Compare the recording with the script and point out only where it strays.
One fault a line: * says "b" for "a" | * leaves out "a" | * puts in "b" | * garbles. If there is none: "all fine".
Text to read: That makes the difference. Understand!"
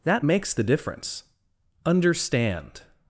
all fine